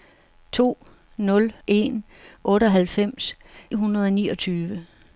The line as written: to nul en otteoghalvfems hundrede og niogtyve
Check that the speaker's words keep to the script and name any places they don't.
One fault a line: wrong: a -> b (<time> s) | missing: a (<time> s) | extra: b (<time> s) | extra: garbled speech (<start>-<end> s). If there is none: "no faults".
no faults